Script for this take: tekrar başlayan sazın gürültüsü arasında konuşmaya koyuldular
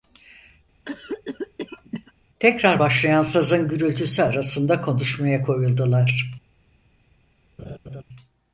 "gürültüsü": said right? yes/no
yes